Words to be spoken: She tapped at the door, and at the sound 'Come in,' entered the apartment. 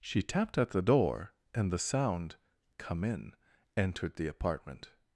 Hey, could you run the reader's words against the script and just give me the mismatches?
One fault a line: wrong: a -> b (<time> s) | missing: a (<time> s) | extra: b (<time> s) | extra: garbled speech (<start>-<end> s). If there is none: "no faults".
missing: at (1.7 s)